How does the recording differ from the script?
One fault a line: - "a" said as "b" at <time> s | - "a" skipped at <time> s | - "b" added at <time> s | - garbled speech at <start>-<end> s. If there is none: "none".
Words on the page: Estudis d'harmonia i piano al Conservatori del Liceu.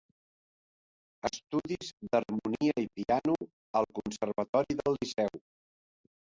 none